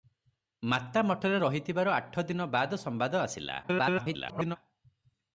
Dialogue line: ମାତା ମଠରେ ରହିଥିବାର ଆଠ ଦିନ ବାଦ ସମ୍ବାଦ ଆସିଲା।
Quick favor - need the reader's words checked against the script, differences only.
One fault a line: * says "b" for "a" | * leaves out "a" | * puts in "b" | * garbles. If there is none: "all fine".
* garbles